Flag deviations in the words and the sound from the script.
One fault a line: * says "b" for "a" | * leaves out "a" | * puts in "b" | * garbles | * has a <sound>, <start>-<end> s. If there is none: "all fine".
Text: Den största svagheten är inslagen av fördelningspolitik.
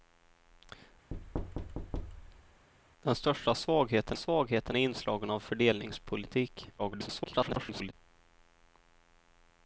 * has a thud, 1.1-2.7 s
* puts in "svagheten"
* garbles